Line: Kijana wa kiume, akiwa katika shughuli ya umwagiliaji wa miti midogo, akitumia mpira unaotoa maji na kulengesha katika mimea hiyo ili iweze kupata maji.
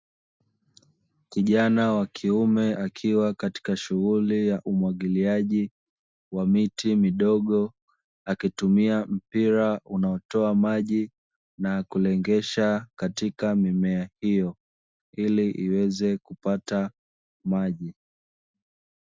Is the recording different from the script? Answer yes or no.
no